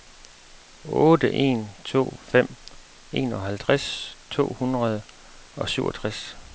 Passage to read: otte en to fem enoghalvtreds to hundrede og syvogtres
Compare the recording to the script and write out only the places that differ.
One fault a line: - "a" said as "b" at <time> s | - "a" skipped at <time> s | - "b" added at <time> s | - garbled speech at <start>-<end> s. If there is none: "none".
none